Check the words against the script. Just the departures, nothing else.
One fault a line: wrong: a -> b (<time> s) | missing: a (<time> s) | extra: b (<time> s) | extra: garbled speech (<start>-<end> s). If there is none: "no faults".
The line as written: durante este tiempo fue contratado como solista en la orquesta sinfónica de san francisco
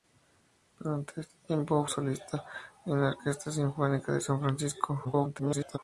missing: fue contratado como (1.9 s)
extra: garbled speech (5.0-5.8 s)